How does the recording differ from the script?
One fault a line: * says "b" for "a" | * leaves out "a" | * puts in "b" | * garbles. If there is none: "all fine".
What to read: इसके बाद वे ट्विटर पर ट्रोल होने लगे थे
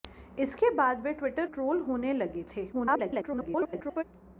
* leaves out "पर"
* garbles